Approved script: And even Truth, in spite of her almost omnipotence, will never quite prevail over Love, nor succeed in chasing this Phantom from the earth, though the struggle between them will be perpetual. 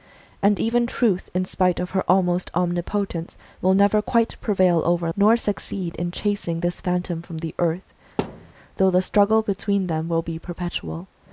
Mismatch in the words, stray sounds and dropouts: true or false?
true